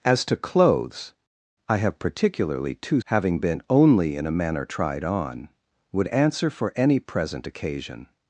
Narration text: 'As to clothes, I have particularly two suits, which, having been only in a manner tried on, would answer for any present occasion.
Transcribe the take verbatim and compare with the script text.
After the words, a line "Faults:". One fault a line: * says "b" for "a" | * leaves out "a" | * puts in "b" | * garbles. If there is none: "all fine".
'As to clothes, I have particularly two having been only in a manner tried on, would answer for any present occasion.
Faults:
* leaves out "suits which"